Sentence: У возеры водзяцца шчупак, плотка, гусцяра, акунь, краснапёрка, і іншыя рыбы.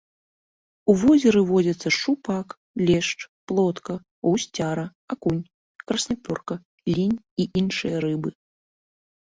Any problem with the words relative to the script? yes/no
yes